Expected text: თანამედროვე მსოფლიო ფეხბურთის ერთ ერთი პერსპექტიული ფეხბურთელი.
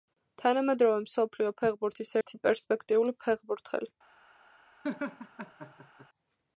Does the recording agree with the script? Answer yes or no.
no